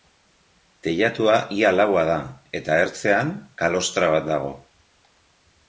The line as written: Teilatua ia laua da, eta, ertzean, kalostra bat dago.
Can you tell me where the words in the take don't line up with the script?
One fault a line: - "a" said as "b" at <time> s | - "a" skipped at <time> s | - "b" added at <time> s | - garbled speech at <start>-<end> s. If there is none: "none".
none